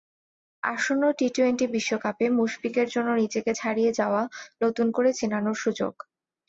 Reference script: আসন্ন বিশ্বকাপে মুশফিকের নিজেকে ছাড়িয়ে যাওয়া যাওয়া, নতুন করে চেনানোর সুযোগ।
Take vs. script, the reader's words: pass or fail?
fail